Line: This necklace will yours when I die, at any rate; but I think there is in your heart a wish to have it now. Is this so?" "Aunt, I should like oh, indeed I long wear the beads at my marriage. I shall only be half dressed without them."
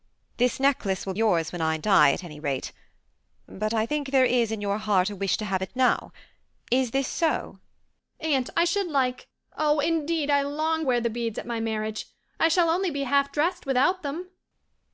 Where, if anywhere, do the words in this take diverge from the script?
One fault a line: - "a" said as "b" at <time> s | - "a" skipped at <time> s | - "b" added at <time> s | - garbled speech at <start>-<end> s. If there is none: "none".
none